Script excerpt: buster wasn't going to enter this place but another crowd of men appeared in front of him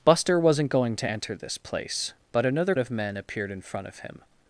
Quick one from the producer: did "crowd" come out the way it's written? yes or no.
no